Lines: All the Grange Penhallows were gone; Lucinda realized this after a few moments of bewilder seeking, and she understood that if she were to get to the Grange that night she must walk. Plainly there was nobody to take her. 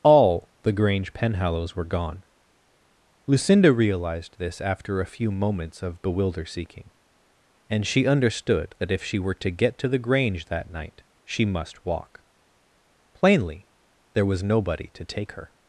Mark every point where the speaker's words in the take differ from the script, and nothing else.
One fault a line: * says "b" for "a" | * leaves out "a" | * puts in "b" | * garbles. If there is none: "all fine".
all fine